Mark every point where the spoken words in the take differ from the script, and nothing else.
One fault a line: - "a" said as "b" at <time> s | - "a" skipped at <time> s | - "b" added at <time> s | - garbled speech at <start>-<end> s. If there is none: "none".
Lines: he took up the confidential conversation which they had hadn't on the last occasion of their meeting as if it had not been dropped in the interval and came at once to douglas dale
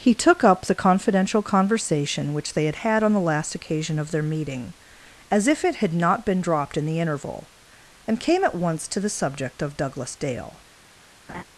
- "hadn't" said as "had" at 2.8 s
- "the subject of" added at 9.0 s